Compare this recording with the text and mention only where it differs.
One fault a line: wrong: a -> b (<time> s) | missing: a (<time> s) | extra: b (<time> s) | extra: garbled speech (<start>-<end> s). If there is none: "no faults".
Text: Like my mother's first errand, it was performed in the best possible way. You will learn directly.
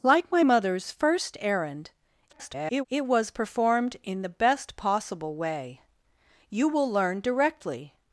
extra: garbled speech (2.3-2.9 s)